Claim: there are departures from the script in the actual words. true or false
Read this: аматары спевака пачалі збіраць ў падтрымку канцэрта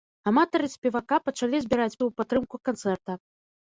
false